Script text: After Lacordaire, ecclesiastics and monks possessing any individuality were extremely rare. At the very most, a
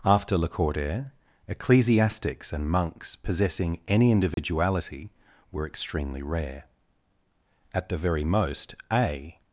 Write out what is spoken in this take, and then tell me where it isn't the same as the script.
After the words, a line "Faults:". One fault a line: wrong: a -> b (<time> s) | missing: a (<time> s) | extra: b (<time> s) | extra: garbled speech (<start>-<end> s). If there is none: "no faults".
After Lacordaire, ecclesiastics and monks possessing any individuality were extremely rare. At the very most, a
Faults:
no faults